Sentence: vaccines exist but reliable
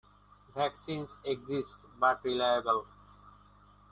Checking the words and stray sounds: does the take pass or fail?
pass